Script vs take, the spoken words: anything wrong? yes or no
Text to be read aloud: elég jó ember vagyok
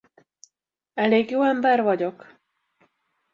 no